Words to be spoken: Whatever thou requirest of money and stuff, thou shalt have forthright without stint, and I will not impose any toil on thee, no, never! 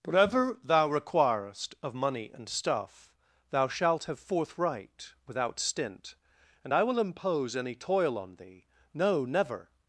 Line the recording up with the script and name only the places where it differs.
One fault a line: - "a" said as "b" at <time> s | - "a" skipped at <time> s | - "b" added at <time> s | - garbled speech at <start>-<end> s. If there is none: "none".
- "not" skipped at 7.0 s